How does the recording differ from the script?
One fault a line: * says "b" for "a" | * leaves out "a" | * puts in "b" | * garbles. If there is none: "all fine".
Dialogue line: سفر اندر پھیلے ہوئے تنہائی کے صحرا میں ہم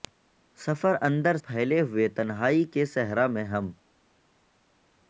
all fine